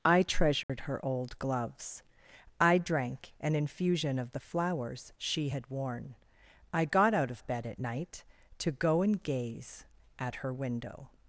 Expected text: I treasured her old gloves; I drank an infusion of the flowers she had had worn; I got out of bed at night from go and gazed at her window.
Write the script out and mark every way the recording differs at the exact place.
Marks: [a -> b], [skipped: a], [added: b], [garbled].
I treasured her old gloves; I drank an infusion of the flowers she had [skipped: had] worn; I got out of bed at night [from -> to] go and [gazed -> gaze] at her window.